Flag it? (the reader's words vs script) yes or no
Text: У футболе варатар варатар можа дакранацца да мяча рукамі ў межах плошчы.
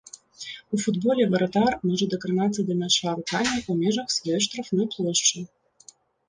yes